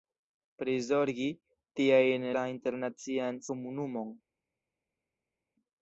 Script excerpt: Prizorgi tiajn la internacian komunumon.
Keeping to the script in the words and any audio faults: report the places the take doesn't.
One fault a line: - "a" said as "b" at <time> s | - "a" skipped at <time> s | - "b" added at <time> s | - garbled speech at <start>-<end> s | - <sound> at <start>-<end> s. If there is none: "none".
none